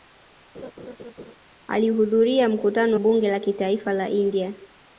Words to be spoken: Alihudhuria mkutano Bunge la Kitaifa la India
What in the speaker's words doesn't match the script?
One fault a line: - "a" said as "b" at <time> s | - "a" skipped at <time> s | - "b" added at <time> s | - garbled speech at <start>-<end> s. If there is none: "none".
none